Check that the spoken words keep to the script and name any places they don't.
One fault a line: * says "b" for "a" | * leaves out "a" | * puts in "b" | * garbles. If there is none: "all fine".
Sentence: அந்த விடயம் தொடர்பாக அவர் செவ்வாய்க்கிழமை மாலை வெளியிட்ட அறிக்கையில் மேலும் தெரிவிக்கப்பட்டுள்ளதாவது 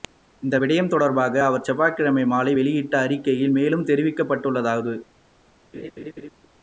* says "இந்த" for "அந்த"